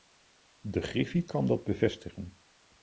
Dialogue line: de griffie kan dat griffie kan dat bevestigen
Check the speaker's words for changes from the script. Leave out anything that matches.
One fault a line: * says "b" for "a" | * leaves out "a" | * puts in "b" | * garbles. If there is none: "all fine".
* leaves out "griffie kan dat"